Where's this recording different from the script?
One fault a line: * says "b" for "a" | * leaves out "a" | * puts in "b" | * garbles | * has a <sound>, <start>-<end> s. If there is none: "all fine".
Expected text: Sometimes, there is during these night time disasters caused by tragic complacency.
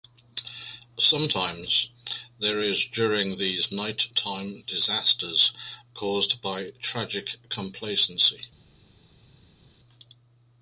all fine